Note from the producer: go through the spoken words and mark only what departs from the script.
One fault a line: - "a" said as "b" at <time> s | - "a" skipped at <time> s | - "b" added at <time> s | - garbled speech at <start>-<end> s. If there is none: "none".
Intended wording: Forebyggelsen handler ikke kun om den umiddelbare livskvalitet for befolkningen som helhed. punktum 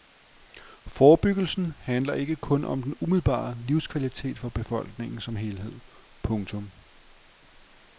none